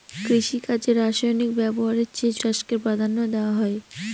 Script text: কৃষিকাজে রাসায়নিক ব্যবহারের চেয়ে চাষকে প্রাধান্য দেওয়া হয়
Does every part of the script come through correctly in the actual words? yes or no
yes